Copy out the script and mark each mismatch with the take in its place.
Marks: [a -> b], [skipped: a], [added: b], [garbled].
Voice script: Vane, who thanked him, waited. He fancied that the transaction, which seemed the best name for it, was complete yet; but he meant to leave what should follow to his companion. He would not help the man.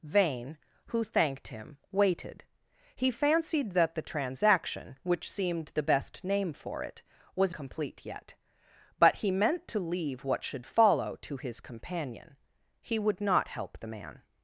Vane, who thanked him, waited. He fancied that the transaction, which seemed the best name for it, was complete yet; but he meant to leave what should follow to his companion. He would not help the man.